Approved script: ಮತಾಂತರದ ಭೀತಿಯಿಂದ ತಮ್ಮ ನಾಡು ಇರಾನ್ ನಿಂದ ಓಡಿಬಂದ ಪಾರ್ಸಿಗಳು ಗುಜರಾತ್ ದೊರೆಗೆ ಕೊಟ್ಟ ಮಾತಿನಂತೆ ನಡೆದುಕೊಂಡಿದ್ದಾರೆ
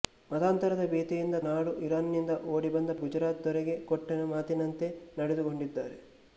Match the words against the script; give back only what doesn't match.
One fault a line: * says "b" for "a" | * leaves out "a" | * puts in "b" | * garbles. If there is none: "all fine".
* leaves out "ತಮ್ಮ"
* leaves out "ಪಾರ್ಸಿಗಳು"